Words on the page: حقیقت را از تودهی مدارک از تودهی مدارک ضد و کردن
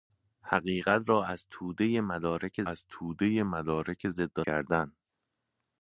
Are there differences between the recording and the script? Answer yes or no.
no